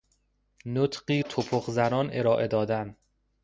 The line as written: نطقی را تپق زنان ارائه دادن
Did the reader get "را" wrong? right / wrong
wrong